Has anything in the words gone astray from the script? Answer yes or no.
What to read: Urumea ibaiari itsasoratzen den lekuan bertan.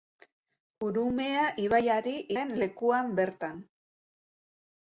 yes